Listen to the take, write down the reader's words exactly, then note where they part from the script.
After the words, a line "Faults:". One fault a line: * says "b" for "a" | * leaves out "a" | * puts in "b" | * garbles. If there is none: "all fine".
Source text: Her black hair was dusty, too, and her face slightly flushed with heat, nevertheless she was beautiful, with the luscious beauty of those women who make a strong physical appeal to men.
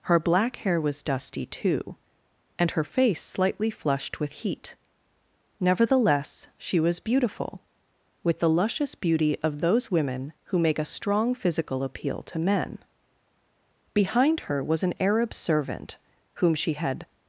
Her black hair was dusty, too, and her face slightly flushed with heat, nevertheless she was beautiful, with the luscious beauty of those women who make a strong physical appeal to men. Behind her was an Arab servant, whom she had
Faults:
* puts in "Behind her was an Arab servant whom she had"